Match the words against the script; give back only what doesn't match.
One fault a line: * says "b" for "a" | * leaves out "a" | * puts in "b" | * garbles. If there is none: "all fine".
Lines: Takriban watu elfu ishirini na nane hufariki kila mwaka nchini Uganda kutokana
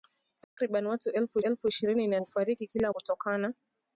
* puts in "elfu"
* leaves out "nane"
* leaves out "mwaka nchini Uganda"